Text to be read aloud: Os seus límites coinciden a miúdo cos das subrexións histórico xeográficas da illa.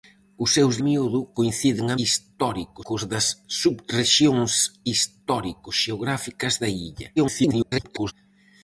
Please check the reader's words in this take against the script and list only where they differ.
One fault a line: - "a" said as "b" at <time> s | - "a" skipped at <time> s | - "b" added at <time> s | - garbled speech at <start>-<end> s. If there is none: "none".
- "límites" said as "miúdo" at 0.8 s
- "miúdo" said as "histórico" at 2.0 s
- garbled speech at 7.2-8.1 s